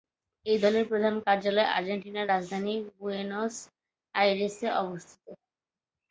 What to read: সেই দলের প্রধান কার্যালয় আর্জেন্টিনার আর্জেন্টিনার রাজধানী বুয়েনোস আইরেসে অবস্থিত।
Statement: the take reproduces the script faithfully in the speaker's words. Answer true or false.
false